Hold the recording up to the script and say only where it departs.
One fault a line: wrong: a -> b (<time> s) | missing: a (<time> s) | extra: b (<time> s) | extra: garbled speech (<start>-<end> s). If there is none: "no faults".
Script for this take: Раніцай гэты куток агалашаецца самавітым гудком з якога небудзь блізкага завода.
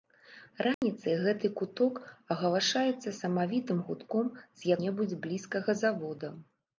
missing: якога (4.7 s)